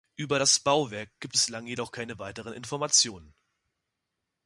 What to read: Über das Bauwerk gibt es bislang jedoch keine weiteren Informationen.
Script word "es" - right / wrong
wrong